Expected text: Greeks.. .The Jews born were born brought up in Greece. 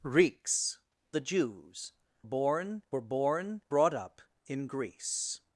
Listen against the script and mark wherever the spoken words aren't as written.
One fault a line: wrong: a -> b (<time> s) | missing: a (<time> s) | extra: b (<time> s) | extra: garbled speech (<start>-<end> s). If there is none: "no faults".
no faults